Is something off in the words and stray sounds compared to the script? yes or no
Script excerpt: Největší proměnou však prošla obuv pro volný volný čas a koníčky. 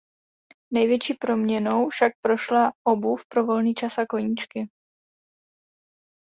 yes